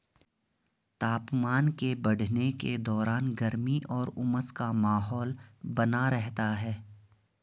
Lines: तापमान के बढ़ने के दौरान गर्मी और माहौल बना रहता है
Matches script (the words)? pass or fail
fail